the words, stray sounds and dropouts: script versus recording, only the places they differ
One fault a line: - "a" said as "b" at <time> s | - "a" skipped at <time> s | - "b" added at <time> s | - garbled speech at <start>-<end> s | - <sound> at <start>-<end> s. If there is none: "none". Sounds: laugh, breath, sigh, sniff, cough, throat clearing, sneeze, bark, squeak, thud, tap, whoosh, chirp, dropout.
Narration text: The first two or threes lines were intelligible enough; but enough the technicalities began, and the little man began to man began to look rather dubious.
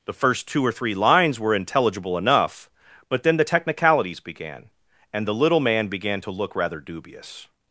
- "threes" said as "three" at 0.7 s
- "enough" said as "then" at 3.2 s
- "man began to" skipped at 6.3 s